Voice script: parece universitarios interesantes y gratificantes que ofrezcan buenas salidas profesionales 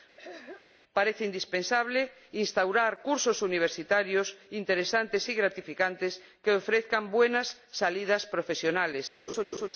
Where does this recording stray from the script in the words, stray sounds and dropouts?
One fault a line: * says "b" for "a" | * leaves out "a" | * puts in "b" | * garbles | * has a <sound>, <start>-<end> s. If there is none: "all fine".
* has a throat clearing, 0.2-0.6 s
* puts in "indispensable instaurar cursos"
* has a laugh, 9.3-9.7 s